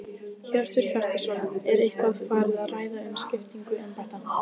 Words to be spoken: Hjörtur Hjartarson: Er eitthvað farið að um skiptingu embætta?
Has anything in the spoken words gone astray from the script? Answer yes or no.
yes